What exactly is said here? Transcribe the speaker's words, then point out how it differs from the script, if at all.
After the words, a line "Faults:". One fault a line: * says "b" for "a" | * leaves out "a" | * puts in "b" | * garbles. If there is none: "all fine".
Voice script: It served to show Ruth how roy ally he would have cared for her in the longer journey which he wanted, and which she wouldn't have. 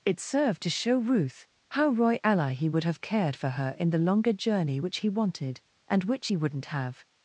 It served to show Ruth how roy ally he would have cared for her in the longer journey which he wanted, and which he wouldn't have.
Faults:
* says "he" for "she"